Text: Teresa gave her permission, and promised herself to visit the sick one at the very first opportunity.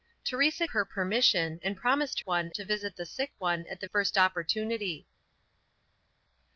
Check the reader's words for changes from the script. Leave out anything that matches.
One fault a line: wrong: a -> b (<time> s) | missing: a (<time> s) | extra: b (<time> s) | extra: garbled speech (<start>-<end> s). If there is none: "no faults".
missing: gave (0.7 s)
wrong: herself -> one (2.2 s)
missing: very (3.9 s)